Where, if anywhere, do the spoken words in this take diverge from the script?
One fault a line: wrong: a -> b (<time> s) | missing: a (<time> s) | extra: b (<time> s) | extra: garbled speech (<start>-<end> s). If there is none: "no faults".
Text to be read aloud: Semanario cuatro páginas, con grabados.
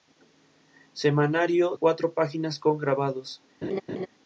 no faults